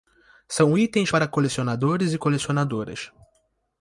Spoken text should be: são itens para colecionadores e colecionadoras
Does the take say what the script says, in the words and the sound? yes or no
yes